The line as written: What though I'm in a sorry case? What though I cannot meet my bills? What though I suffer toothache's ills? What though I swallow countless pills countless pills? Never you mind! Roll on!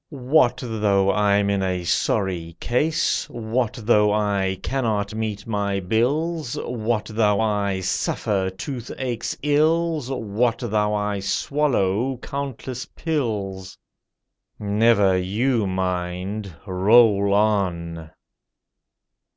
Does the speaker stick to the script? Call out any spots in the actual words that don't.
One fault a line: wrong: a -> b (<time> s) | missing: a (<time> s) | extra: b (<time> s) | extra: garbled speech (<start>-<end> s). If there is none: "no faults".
missing: countless pills (13.8 s)